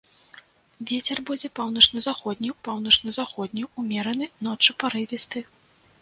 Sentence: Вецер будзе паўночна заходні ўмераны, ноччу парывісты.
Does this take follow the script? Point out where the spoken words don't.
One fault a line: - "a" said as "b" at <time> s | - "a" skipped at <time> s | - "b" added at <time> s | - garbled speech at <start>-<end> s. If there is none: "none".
- "паўночна заходні" added at 2.7 s